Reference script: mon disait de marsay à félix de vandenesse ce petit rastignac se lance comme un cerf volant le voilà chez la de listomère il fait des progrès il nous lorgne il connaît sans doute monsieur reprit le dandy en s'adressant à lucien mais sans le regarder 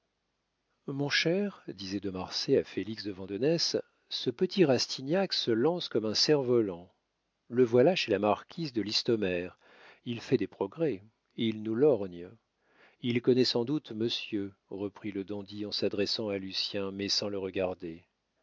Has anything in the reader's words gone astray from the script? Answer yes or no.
yes